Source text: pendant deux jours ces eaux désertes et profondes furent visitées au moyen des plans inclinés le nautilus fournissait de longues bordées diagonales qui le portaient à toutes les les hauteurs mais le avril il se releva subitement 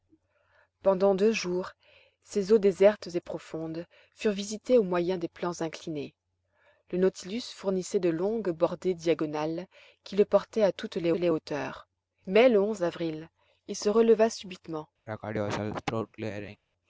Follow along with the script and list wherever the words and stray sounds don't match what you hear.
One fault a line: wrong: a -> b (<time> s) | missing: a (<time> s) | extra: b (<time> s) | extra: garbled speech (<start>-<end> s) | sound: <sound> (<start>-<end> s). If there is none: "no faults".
sound: throat clearing (15.1-16.6 s)